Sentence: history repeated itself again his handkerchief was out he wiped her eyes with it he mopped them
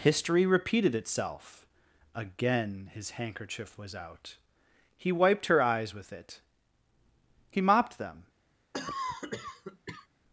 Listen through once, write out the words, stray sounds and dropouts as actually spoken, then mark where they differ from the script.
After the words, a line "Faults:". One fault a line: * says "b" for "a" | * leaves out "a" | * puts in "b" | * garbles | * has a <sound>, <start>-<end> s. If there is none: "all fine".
history repeated itself again his handkerchief was out he wiped her eyes with it he mopped them
Faults:
* has a cough, 8.7-10.1 s